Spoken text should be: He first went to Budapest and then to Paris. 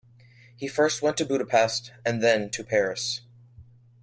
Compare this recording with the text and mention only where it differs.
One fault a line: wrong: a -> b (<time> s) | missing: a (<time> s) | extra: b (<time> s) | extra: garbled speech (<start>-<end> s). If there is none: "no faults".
no faults